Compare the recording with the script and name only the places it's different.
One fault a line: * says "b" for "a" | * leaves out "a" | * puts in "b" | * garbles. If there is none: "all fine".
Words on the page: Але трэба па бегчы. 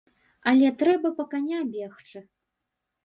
* puts in "каня"